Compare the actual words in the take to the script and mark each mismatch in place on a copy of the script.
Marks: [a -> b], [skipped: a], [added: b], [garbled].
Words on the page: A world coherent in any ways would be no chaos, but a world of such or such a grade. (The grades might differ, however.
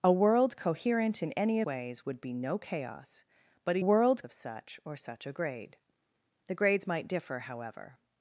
A world coherent in any ways would be no chaos, but a world of such or such a grade. (The grades might differ, however.